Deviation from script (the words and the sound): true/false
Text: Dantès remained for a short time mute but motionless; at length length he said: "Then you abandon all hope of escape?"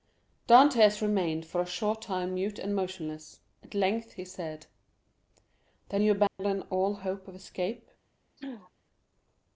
true